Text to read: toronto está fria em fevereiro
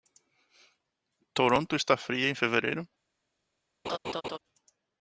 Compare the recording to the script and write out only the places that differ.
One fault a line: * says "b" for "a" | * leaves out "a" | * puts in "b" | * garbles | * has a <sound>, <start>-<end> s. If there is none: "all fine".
* has a laugh, 3.8-4.4 s